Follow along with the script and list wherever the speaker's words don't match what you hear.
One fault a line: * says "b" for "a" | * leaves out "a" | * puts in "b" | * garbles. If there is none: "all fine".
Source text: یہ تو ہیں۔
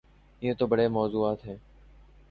* puts in "بڑے موضوعات"